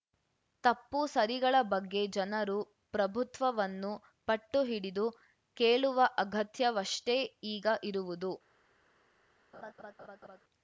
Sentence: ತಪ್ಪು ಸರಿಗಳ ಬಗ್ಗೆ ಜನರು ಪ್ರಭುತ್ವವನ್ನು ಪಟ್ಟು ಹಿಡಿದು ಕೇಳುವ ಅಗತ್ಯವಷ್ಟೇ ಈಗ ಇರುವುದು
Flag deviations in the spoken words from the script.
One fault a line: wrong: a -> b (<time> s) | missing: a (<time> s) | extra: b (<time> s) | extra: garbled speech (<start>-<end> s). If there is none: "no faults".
no faults